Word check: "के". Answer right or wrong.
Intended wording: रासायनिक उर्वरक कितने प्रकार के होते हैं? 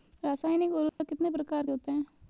wrong